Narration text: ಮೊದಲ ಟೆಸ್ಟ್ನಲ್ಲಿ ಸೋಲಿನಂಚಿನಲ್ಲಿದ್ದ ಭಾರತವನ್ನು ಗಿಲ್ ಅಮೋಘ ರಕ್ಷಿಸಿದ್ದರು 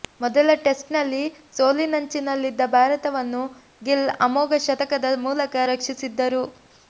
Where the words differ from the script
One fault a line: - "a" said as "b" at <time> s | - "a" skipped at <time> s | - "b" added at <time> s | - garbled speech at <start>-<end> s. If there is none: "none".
- "ಶತಕದ ಮೂಲಕ" added at 4.7 s